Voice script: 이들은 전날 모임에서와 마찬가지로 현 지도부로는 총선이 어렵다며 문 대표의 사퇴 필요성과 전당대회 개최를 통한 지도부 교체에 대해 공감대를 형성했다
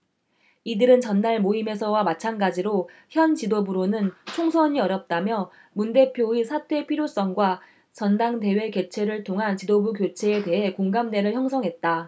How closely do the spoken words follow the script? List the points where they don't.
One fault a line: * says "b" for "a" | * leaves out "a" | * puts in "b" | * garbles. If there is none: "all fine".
all fine